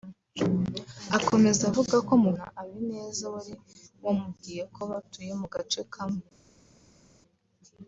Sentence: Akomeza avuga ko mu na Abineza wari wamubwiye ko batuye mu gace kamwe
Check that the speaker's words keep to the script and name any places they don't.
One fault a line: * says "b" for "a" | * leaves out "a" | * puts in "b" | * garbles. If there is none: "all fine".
all fine